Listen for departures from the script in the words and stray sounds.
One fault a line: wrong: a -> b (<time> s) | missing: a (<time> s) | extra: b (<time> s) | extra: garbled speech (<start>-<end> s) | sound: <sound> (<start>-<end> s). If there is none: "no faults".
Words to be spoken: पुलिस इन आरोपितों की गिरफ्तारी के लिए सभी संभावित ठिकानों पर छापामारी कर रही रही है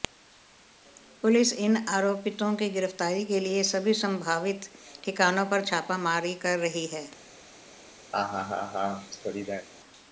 missing: रही (6.8 s)
sound: laugh (8.1-9.7 s)